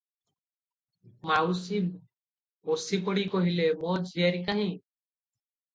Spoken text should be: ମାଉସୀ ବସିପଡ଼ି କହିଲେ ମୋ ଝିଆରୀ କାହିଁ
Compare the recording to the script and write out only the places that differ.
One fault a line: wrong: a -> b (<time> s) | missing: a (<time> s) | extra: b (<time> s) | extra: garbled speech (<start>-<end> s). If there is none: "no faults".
no faults